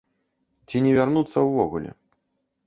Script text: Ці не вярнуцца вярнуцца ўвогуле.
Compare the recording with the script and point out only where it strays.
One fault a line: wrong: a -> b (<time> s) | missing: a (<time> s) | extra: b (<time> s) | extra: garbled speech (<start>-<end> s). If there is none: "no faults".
missing: вярнуцца (1.4 s)